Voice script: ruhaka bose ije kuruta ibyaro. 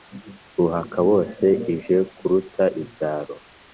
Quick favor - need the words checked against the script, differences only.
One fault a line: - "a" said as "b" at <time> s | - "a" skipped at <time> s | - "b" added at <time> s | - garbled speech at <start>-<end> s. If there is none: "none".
none